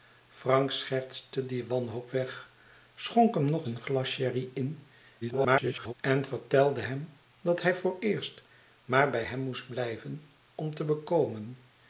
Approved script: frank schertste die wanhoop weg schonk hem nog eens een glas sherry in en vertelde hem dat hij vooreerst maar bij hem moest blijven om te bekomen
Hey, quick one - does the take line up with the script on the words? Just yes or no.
no